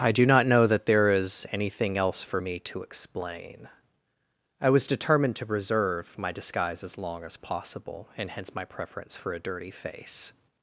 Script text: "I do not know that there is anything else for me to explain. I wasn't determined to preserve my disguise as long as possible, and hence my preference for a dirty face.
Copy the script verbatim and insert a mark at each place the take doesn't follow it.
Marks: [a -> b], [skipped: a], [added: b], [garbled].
"I do not know that there is anything else for me to explain. I [wasn't -> was] determined to preserve my disguise as long as possible, and hence my preference for a dirty face.